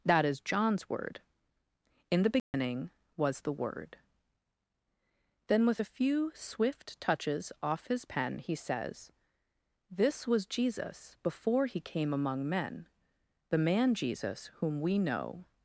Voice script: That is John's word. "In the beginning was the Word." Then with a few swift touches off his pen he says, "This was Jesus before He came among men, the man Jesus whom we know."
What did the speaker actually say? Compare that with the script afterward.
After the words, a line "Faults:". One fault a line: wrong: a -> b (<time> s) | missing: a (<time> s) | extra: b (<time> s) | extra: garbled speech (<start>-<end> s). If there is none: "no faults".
That is John's word. "In the beginning was the Word." Then with a few swift touches off his pen he says, "This was Jesus before He came among men, the man Jesus whom we know."
Faults:
no faults